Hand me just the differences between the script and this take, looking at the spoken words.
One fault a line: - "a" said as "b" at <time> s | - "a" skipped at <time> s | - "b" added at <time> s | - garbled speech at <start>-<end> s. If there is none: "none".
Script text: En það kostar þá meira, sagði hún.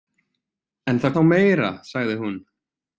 - "kostar" skipped at 1.1 s